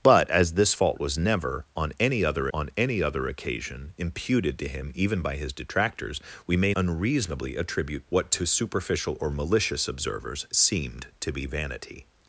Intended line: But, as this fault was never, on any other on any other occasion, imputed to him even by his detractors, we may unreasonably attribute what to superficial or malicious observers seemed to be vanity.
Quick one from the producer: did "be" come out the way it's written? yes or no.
yes